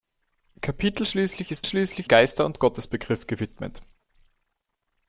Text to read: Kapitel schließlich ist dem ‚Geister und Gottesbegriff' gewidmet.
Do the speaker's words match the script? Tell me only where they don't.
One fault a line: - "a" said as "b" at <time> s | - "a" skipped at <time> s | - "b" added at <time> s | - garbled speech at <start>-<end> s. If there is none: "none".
- "dem" said as "schließlich" at 1.6 s